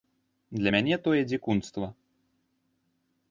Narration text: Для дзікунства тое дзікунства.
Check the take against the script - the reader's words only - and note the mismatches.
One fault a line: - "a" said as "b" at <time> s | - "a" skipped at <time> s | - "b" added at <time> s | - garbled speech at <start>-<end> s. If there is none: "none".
- "дзікунства" said as "мяне" at 0.7 s